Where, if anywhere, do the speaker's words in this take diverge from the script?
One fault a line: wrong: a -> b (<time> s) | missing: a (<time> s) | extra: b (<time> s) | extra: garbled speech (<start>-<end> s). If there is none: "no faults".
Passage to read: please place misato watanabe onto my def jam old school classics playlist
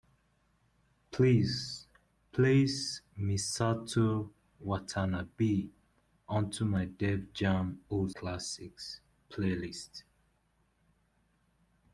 missing: school (8.1 s)